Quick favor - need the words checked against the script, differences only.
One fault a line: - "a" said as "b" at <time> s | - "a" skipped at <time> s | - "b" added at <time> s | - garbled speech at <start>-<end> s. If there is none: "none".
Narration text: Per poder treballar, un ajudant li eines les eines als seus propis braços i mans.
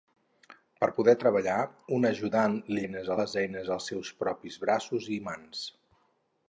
none